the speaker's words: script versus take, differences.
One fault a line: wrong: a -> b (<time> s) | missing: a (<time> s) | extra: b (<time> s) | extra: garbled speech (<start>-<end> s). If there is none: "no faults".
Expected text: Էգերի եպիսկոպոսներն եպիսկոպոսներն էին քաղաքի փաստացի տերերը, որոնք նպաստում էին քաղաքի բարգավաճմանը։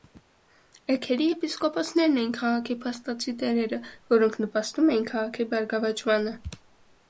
missing: եպիսկոպոսներն (2.2 s)